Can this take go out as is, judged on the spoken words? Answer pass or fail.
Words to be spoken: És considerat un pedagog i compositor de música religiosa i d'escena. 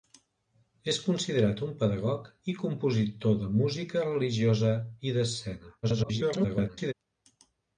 fail